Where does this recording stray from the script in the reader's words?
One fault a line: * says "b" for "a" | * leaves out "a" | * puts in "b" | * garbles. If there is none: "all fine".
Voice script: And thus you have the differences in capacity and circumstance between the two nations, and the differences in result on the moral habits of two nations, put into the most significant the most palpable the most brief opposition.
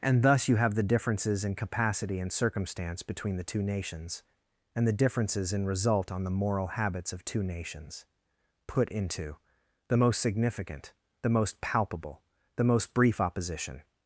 all fine